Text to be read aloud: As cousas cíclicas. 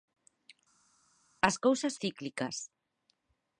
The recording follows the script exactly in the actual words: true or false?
true